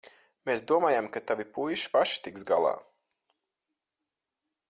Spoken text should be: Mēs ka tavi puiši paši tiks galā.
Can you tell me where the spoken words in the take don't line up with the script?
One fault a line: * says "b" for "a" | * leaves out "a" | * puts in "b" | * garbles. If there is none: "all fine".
* puts in "domājām"